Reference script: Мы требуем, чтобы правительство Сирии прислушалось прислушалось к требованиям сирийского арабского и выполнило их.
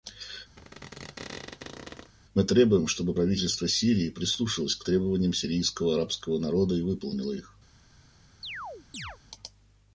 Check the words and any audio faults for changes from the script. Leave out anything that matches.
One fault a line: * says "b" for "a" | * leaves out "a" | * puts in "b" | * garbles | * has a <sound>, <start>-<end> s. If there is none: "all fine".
* has a squeak, 0.6-2.1 s
* leaves out "прислушалось"
* puts in "народа"
* has a chirp, 8.4-9.2 s